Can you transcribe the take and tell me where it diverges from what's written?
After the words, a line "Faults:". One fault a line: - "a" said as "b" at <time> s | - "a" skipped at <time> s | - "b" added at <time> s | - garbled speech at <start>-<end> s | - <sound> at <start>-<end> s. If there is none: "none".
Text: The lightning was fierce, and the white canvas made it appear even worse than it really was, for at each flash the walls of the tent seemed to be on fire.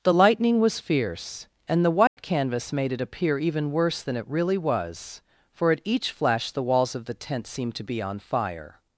The lightning was fierce, and the white canvas made it appear even worse than it really was, for at each flash the walls of the tent seemed to be on fire.
Faults:
- dropout at 2.1-2.2 s